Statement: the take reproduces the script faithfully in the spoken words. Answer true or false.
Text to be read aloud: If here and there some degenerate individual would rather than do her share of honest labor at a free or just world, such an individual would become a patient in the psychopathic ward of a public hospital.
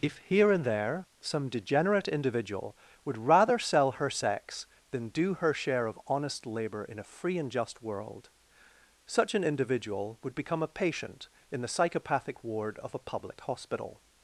false